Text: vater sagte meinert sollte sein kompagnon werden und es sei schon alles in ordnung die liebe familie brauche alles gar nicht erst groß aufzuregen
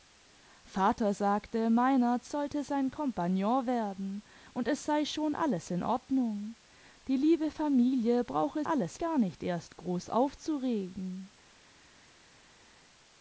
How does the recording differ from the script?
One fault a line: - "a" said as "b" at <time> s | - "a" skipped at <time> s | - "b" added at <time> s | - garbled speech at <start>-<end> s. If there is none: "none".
none